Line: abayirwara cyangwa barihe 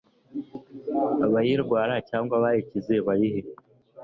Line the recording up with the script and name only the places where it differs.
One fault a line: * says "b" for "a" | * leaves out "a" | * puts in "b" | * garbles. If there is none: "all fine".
* puts in "abayikize"